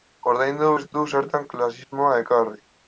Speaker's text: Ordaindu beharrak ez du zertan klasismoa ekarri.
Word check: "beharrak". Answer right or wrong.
wrong